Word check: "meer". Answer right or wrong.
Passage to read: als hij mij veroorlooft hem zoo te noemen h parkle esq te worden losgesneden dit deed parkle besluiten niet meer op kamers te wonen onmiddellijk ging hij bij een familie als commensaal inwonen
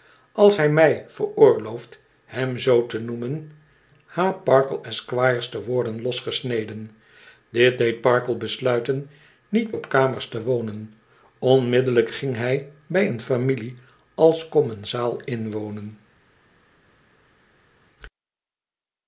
wrong